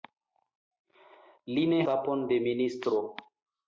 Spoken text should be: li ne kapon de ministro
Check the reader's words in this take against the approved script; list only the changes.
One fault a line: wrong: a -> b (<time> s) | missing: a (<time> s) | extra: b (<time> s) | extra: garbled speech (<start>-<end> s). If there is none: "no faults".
no faults